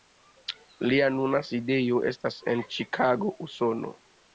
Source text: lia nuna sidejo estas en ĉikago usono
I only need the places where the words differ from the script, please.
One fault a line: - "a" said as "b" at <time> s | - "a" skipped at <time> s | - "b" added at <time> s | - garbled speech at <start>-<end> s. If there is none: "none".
none